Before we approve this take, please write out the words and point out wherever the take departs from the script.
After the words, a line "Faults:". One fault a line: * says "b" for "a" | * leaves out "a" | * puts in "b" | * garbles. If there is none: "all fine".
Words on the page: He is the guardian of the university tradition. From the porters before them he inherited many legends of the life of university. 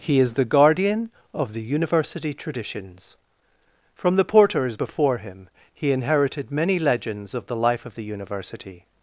He is the guardian of the university traditions. From the porters before him he inherited many legends of the life of the university.
Faults:
* says "traditions" for "tradition"
* says "him" for "them"
* puts in "the"